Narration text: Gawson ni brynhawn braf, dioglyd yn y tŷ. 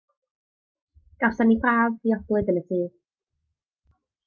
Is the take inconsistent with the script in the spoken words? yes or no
yes